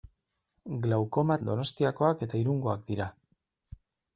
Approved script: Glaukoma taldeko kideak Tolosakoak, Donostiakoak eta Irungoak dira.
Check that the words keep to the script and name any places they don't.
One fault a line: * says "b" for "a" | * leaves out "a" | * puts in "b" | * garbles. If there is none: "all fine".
* leaves out "taldeko kideak Tolosakoak"